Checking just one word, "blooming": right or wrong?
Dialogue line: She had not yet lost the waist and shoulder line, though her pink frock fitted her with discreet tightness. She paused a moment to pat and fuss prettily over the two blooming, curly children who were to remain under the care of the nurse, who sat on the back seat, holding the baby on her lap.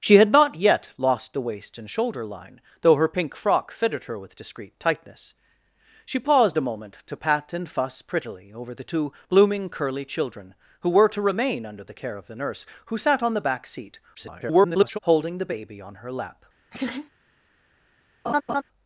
right